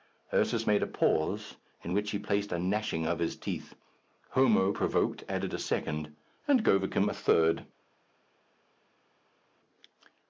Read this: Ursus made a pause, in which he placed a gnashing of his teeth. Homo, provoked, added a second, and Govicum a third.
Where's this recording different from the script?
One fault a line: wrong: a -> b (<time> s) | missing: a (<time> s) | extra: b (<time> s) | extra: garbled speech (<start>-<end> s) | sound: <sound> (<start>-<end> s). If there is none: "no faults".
no faults